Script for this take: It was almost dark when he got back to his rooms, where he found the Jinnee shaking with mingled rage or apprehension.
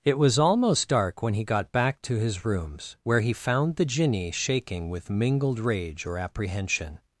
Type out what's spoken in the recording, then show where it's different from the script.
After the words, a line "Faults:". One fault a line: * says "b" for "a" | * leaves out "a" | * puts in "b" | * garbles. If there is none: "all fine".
It was almost dark when he got back to his rooms, where he found the Jinnee shaking with mingled rage or apprehension.
Faults:
all fine